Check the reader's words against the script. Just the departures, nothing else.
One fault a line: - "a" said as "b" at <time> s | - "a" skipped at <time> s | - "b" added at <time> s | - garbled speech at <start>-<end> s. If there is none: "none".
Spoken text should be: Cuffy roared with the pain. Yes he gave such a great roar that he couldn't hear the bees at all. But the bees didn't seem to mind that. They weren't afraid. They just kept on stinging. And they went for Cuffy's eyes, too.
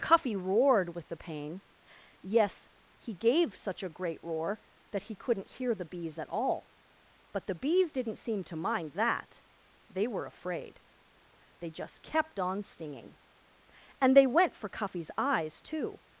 - "weren't" said as "were" at 10.1 s